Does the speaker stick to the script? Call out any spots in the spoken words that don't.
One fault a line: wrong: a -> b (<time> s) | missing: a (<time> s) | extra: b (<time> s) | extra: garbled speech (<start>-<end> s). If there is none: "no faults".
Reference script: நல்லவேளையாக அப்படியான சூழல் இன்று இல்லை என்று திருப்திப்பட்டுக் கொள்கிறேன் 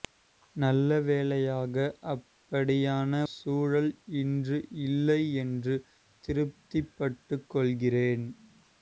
no faults